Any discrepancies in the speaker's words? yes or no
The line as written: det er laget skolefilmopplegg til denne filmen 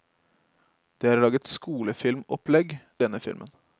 yes